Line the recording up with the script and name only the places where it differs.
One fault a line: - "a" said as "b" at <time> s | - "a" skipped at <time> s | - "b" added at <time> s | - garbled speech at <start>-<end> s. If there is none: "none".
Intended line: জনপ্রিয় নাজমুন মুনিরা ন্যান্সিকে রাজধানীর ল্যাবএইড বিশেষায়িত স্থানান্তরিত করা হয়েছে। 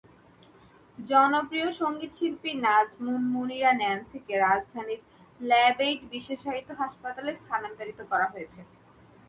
- "সংগীতশিল্পী" added at 1.8 s
- "হাসপাতালে" added at 6.8 s